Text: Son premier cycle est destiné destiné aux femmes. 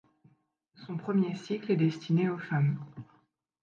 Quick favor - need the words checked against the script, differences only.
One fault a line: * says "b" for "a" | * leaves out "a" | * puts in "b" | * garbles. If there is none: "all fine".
* leaves out "destiné"